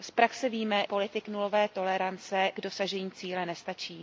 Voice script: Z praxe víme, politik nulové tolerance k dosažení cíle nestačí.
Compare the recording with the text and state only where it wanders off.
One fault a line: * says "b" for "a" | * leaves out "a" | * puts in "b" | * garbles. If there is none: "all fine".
all fine